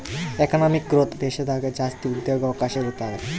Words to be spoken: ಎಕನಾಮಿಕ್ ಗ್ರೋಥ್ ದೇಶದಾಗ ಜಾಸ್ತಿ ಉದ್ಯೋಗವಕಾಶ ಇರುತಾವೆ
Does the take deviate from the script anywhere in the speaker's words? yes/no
no